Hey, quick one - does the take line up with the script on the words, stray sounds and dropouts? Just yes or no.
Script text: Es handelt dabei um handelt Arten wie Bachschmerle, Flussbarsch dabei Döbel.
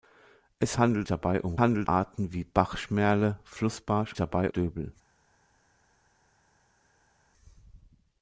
yes